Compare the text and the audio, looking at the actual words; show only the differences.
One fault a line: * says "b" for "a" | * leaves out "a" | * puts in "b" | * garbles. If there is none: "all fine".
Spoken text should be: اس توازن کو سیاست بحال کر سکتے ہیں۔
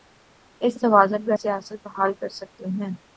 all fine